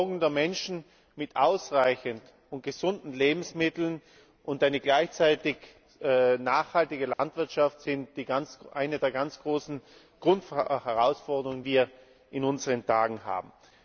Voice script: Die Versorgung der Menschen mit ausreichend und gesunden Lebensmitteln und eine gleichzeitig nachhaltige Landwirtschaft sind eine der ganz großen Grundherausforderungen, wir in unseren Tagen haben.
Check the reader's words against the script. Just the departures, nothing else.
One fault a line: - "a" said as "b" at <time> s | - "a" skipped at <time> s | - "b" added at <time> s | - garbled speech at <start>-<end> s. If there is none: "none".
none